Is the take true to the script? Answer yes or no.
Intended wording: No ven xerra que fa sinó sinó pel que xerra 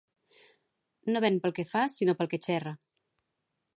no